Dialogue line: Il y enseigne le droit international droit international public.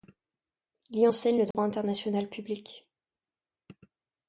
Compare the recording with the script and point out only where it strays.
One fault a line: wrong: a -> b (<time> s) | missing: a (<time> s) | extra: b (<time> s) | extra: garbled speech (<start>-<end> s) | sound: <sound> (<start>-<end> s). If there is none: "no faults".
sound: dropout (1.5-1.5 s)
missing: droit international (2.3 s)